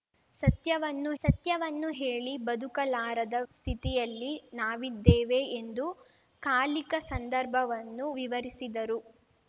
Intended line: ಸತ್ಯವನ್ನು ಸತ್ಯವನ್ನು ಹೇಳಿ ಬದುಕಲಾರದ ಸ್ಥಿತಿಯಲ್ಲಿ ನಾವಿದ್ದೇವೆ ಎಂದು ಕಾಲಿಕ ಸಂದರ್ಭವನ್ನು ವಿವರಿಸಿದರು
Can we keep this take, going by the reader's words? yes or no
yes